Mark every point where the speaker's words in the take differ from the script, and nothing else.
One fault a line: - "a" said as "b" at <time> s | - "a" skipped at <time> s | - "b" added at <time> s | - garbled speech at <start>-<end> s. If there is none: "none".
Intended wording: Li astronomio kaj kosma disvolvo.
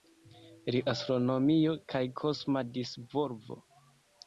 none